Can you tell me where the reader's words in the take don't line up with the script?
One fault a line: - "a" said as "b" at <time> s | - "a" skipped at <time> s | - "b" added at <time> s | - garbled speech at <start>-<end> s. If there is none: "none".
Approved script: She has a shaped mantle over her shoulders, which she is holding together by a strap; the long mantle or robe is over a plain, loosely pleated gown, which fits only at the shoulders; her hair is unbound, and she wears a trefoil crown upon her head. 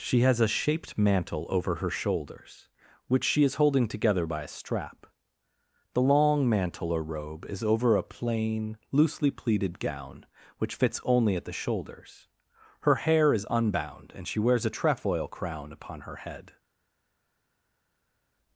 none